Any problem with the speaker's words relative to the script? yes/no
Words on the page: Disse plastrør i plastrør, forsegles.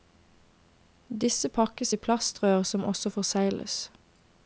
yes